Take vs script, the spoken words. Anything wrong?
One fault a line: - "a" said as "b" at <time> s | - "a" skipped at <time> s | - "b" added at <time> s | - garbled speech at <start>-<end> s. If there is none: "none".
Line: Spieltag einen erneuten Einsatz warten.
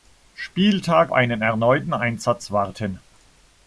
none